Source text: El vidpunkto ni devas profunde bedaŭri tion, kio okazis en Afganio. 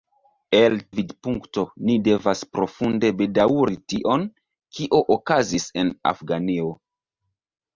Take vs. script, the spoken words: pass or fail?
pass